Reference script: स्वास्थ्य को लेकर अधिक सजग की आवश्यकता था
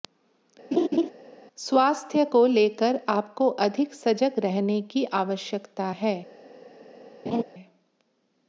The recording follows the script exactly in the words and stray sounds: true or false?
false